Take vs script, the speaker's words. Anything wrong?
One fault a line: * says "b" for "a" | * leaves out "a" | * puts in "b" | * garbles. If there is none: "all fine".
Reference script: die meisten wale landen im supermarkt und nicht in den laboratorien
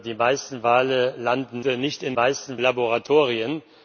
* leaves out "im supermarkt und"
* says "meisten" for "den"